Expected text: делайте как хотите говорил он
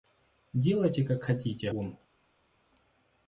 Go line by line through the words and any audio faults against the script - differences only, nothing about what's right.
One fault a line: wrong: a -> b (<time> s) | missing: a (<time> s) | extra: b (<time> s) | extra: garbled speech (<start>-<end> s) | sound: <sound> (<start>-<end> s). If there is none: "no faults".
missing: говорил (1.7 s)